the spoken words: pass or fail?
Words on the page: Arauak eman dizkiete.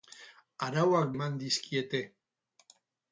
pass